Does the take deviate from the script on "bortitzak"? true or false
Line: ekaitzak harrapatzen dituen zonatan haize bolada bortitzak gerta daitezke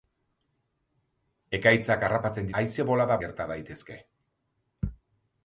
true